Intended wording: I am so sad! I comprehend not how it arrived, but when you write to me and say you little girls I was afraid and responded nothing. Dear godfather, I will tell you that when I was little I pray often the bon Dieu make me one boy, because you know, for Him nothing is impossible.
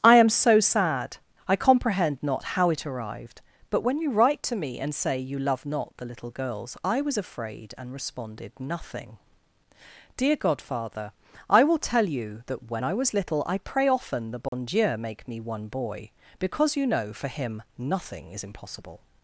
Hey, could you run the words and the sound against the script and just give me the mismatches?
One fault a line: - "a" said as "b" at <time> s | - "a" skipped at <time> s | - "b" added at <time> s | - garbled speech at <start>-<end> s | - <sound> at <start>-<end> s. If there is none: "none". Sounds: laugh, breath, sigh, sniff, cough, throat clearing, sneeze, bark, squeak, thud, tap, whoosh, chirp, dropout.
- "love not the" added at 5.4 s
- dropout at 14.5-14.5 s